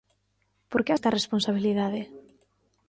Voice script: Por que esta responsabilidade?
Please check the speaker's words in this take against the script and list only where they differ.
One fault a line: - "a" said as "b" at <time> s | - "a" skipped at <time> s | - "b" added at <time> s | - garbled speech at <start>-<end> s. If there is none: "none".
none